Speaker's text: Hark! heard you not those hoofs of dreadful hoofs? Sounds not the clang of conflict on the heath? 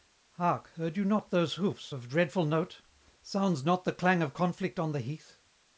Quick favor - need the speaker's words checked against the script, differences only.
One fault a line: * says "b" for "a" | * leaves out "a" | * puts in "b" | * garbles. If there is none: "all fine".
* says "note" for "hoofs"